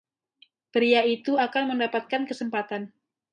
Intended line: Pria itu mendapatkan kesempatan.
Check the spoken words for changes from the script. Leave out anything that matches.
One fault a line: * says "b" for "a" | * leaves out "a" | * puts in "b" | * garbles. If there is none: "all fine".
* puts in "akan"